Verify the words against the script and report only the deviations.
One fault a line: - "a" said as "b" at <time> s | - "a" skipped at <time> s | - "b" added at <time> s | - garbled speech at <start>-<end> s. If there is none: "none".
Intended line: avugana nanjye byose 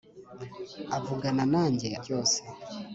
none